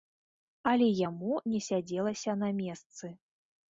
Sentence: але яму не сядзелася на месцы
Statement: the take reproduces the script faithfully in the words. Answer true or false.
true